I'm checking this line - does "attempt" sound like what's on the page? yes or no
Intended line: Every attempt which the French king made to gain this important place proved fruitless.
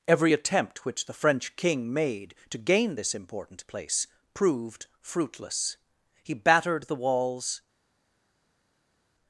yes